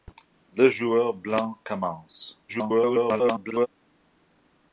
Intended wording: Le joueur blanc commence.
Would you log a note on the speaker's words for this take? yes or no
yes